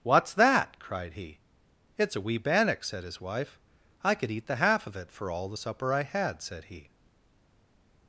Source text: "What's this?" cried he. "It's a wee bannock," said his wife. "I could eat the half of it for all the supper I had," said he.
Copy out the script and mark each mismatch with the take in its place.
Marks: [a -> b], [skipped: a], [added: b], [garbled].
"What's [this?" -> that] cried he. "It's a wee bannock," said his wife. "I could eat the half of it for all the supper I had," said he.